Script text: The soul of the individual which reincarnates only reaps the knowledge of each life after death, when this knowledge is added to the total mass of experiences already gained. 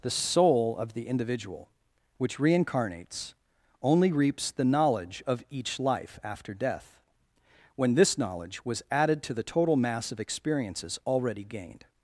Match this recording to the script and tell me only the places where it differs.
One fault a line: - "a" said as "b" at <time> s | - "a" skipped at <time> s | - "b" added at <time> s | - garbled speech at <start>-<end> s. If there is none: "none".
- "is" said as "was" at 8.6 s